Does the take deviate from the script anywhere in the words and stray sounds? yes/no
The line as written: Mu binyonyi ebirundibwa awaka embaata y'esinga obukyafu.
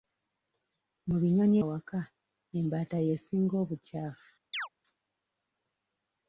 yes